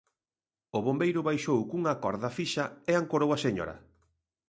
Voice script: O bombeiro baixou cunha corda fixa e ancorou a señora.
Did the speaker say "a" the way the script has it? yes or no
yes